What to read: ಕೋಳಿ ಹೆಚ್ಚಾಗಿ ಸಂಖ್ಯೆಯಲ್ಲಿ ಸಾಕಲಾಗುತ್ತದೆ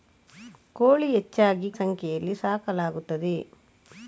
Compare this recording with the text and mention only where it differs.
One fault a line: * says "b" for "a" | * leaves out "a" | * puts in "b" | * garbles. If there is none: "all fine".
all fine